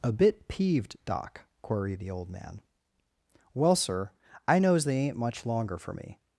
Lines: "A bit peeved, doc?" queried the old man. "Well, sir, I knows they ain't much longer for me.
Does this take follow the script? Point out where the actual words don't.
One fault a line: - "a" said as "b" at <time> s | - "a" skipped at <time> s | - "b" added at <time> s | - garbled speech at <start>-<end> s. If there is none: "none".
none